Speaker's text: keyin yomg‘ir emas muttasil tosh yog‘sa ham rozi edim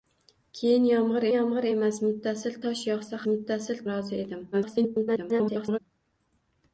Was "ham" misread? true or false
true